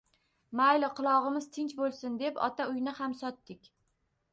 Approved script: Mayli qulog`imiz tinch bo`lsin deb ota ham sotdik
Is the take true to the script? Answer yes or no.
no